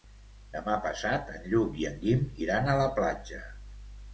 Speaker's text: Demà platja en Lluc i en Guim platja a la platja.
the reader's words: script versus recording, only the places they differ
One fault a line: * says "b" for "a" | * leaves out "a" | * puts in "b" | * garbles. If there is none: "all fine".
* says "passat" for "platja"
* says "iran" for "platja"